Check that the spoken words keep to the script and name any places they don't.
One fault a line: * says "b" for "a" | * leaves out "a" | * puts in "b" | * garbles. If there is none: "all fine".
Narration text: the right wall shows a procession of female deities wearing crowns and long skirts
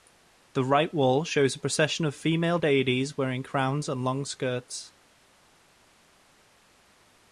all fine